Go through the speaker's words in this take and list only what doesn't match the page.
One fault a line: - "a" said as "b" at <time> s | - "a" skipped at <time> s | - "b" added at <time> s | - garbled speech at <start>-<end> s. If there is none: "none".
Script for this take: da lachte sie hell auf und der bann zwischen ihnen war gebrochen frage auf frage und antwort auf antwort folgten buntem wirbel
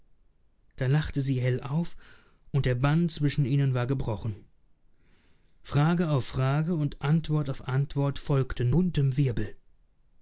none